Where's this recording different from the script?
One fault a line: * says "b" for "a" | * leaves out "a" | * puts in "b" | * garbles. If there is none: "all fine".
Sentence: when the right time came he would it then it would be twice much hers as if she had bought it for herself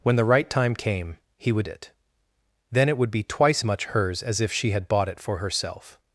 all fine